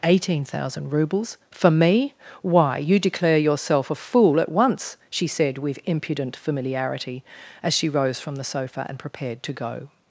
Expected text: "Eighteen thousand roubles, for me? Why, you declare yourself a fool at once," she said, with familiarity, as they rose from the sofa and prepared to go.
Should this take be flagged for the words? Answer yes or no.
yes